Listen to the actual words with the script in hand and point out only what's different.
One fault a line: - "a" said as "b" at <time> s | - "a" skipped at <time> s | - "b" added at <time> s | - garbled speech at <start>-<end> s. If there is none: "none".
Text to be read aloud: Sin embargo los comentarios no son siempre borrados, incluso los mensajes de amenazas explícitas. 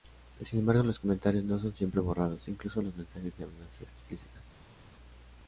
none